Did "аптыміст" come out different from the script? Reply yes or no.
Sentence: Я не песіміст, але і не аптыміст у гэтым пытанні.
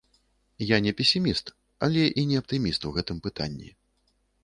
no